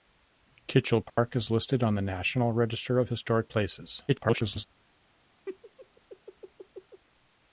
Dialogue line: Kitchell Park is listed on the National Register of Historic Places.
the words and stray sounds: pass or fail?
fail